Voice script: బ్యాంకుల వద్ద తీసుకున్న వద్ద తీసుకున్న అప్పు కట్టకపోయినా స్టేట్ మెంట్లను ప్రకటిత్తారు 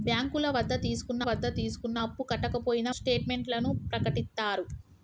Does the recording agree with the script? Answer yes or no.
yes